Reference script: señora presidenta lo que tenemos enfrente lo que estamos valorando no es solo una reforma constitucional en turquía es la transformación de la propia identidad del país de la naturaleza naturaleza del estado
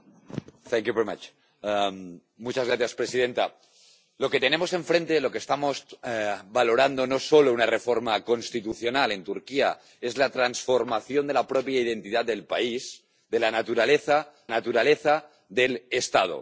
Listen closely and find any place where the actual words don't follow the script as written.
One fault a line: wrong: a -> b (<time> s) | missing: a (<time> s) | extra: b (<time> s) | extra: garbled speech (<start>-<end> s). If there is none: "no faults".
no faults